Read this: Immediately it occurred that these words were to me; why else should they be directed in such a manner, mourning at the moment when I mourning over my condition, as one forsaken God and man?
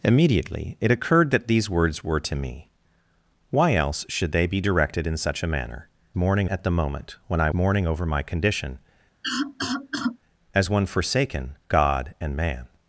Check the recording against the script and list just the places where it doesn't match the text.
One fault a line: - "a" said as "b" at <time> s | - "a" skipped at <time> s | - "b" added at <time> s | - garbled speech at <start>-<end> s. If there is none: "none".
none